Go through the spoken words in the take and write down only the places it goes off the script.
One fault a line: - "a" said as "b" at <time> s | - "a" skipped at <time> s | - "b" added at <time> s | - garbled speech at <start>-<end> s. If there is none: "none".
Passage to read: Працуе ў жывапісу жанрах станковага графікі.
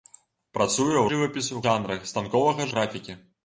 none